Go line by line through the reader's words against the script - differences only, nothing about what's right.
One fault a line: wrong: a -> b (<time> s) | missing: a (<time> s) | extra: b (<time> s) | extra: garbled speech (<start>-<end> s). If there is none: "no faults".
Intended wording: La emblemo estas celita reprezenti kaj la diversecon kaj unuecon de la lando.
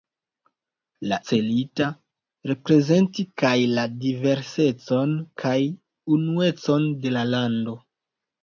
missing: emblemo estas (1.2 s)